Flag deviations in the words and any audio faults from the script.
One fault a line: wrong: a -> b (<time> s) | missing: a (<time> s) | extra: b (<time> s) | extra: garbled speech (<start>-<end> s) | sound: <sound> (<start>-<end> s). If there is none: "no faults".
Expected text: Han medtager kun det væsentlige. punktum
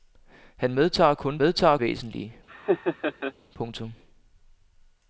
wrong: det -> medtager (1.4 s)
sound: laugh (2.5-3.3 s)